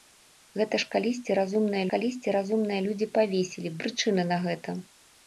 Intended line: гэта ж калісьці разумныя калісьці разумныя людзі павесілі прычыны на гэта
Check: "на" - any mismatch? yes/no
no